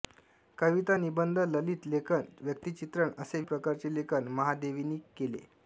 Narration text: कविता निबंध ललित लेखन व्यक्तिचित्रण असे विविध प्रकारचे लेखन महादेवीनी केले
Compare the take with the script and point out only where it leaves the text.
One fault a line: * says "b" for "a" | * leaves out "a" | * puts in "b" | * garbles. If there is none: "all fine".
* leaves out "विविध"